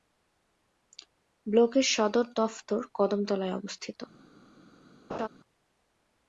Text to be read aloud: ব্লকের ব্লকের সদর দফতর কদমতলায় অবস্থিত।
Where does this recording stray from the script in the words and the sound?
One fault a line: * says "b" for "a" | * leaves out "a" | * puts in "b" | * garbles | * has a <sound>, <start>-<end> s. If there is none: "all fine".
* leaves out "ব্লকের"
* has a laugh, 5.1-5.3 s